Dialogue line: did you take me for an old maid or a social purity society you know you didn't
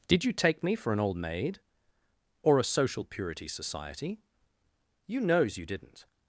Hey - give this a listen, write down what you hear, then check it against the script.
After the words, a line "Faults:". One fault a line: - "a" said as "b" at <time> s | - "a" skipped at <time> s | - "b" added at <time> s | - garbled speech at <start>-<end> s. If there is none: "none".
did you take me for an old maid or a social purity society you knows you didn't
Faults:
- "know" said as "knows" at 5.2 s